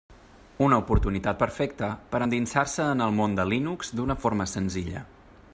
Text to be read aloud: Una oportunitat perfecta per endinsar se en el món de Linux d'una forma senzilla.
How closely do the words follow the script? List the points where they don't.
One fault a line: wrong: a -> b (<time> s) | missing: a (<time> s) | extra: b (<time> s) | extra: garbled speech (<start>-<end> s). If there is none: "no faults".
no faults